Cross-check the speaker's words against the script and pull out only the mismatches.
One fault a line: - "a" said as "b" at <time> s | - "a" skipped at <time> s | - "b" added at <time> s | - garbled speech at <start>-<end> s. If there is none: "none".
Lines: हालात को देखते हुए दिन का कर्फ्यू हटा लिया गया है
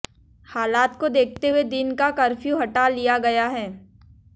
none